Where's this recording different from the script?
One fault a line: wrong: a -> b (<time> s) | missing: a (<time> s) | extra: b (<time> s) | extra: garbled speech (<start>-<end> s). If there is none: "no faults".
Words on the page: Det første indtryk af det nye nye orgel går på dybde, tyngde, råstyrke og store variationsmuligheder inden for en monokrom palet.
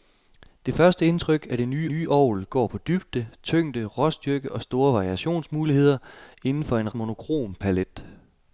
no faults